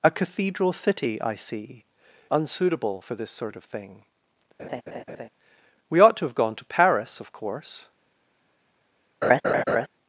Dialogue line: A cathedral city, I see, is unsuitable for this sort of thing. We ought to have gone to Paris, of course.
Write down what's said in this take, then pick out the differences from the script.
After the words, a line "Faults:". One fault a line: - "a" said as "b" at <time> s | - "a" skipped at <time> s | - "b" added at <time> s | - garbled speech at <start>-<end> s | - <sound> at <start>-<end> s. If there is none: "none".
A cathedral city, I see, unsuitable for this sort of thing. We ought to have gone to Paris, of course.
Faults:
- "is" skipped at 1.8 s
- laugh at 4.6-5.3 s
- laugh at 9.2-9.9 s